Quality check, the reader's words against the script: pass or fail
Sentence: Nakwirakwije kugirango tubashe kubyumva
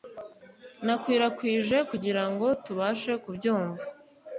pass